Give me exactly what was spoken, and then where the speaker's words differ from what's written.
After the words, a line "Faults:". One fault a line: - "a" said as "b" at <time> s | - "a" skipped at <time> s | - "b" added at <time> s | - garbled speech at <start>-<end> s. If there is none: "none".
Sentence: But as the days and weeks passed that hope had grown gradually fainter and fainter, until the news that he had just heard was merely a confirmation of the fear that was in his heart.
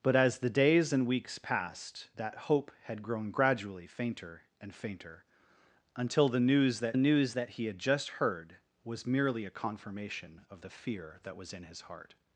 But as the days and weeks passed that hope had grown gradually fainter and fainter, until the news that news that he had just heard was merely a confirmation of the fear that was in his heart.
Faults:
- "news that" added at 7.0 s